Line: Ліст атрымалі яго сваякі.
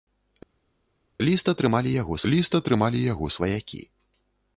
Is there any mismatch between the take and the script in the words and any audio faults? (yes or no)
yes